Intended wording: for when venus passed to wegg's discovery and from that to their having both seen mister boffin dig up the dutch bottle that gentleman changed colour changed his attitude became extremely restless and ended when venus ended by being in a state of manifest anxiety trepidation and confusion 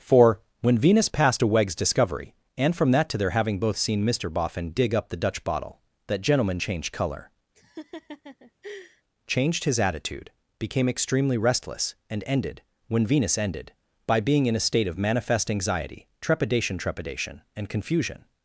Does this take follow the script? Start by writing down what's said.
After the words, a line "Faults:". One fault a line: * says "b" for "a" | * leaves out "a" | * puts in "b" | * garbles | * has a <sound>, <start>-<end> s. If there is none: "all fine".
for when venus passed to wegg's discovery and from that to their having both seen mister boffin dig up the dutch bottle that gentleman changed colour changed his attitude became extremely restless and ended when venus ended by being in a state of manifest anxiety trepidation trepidation and confusion
Faults:
* has a laugh, 7.5-9.0 s
* puts in "trepidation"